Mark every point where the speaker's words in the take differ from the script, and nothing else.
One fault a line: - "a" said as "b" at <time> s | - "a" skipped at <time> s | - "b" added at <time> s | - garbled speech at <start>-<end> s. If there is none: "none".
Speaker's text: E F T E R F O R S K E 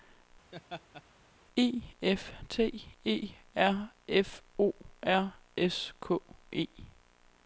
none